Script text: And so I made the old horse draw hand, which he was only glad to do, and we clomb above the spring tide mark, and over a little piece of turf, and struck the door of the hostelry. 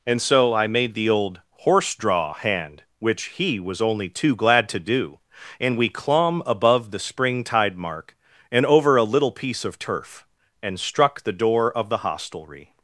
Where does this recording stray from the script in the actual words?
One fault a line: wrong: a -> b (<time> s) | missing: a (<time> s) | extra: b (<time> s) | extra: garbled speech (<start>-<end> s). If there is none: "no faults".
extra: too (4.1 s)